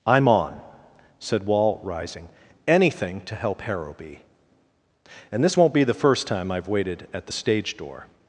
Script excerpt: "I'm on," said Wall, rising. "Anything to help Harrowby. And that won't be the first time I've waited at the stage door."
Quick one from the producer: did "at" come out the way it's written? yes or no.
yes